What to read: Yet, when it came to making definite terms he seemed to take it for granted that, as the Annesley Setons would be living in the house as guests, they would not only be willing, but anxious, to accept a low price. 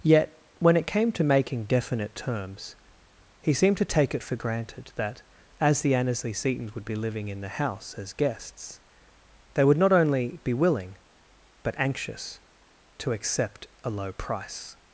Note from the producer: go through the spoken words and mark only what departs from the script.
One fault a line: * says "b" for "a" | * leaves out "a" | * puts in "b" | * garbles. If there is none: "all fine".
all fine